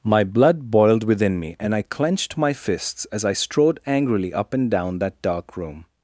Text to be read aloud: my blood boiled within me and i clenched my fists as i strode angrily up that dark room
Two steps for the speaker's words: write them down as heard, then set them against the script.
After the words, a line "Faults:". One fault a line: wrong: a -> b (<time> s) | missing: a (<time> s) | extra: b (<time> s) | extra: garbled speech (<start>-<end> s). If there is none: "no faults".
my blood boiled within me and i clenched my fists as i strode angrily up and down that dark room
Faults:
extra: and down (4.5 s)